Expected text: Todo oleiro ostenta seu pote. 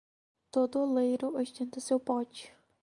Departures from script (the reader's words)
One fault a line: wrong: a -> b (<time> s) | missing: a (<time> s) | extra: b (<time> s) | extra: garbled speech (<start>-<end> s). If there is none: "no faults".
no faults